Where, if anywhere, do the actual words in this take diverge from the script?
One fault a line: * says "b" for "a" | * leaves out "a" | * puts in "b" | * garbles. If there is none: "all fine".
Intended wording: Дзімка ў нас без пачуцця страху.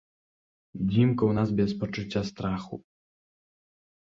all fine